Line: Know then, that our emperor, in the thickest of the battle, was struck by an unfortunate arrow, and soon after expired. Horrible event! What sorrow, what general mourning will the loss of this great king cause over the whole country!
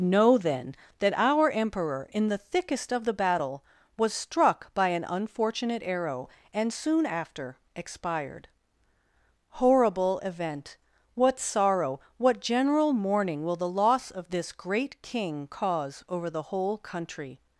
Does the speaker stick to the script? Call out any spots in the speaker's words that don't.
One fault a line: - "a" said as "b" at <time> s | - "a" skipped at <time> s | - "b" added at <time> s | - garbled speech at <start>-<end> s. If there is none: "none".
none